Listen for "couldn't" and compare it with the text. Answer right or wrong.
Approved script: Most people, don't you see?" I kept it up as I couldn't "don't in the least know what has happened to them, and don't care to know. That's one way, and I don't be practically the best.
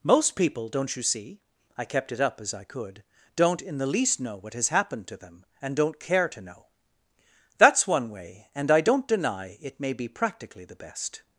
wrong